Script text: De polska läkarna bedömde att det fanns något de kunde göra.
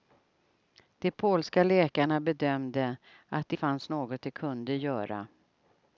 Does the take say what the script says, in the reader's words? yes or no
yes